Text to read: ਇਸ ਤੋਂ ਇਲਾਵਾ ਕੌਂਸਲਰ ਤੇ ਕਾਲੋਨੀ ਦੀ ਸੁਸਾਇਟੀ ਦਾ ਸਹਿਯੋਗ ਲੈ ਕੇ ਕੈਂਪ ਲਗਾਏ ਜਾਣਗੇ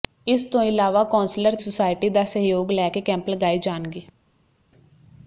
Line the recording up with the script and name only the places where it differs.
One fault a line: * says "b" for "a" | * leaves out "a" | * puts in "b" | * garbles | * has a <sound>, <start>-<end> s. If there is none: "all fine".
* leaves out "ਤੇ ਕਾਲੋਨੀ ਦੀ"